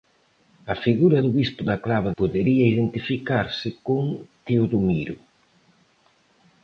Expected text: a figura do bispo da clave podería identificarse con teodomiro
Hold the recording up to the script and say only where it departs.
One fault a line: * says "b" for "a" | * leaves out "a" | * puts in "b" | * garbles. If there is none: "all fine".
all fine